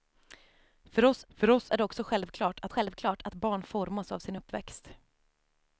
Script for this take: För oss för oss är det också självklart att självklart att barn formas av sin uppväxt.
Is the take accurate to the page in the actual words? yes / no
yes